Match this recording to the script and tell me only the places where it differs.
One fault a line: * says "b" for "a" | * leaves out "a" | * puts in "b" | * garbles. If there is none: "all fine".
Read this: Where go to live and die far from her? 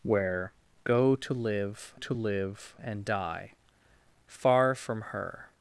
* puts in "to live"